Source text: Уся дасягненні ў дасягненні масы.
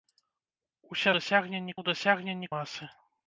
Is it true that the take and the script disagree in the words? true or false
false